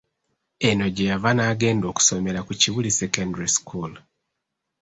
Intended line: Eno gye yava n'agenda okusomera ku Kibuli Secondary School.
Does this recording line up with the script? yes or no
yes